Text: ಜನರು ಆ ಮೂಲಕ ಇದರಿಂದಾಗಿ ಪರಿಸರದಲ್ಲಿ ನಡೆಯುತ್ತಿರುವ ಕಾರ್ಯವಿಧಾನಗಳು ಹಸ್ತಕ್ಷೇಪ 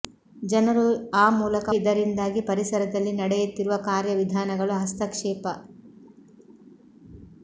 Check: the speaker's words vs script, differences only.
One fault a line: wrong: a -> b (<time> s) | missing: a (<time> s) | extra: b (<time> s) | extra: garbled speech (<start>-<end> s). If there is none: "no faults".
no faults